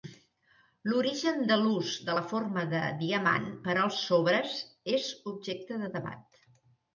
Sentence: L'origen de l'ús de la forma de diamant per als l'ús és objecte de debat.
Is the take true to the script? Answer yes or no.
no